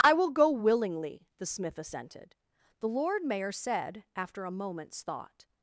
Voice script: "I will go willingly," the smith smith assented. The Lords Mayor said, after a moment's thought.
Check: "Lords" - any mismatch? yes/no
yes